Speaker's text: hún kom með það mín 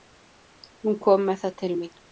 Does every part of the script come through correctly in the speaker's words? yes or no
no